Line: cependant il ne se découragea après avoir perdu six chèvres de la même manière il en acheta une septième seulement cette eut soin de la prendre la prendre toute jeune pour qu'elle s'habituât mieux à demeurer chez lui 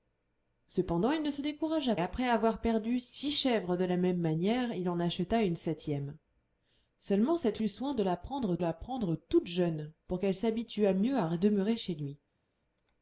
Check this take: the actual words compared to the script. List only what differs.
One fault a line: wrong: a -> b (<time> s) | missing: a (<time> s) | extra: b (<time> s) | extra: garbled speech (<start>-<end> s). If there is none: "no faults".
no faults